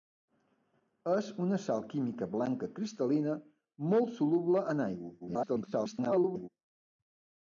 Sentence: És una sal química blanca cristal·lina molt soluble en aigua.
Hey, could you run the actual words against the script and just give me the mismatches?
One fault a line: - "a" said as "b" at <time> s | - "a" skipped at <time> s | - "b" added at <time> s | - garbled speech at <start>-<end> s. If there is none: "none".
- garbled speech at 5.2-6.5 s